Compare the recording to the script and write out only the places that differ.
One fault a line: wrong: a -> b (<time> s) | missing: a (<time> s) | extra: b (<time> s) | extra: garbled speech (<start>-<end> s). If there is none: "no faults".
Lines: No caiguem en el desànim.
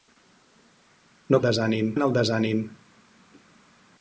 wrong: caiguem -> desànim (1.5 s)